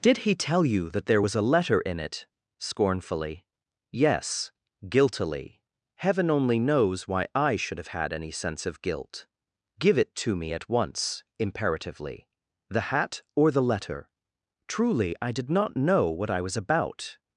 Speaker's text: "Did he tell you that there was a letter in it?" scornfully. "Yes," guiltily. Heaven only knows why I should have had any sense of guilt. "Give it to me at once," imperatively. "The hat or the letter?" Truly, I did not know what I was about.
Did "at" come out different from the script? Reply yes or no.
no